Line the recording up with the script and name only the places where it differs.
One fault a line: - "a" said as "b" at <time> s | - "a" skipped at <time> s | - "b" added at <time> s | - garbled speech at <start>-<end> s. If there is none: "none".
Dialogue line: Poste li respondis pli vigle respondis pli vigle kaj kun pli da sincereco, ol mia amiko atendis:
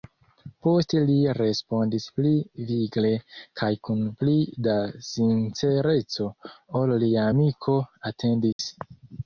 - "respondis pli vigle" skipped at 3.1 s
- "mia" said as "lia" at 7.1 s